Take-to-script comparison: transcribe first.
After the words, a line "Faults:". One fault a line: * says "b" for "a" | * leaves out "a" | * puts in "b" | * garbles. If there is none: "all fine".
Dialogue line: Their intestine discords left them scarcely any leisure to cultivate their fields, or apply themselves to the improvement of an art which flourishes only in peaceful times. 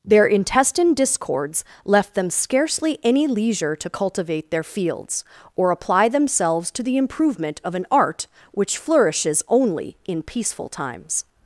Their intestine discords left them scarcely any leisure to cultivate their fields, or apply themselves to the improvement of an art which flourishes only in peaceful times.
Faults:
all fine